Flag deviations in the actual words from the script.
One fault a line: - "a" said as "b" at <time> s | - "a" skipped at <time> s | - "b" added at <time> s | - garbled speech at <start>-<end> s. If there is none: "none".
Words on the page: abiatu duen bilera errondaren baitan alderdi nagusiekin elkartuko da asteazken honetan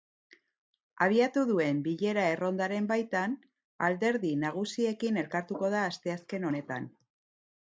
none